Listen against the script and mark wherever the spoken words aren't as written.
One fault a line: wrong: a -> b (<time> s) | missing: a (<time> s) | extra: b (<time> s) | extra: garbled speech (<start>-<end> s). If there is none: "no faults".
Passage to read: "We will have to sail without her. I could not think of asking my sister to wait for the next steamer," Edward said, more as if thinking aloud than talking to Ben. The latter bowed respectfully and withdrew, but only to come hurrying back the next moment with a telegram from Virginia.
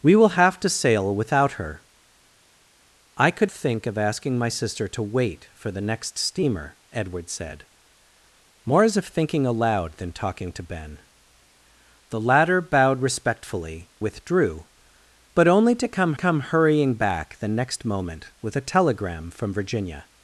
missing: not (3.5 s)
missing: and (13.9 s)
extra: come (16.1 s)